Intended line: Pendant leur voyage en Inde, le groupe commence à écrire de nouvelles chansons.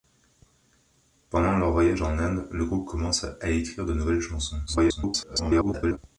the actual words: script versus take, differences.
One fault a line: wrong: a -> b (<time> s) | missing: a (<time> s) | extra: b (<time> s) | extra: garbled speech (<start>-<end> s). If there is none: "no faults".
extra: garbled speech (4.7-6.0 s)